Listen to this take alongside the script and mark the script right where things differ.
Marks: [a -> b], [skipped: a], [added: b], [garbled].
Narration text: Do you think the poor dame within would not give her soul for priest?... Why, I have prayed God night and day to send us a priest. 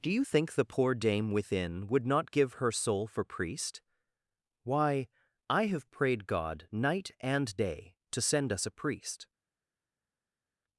Do you think the poor dame within would not give her soul for priest?... Why, I have prayed God night and day to send us a priest.